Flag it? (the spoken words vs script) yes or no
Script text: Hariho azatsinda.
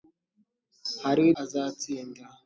no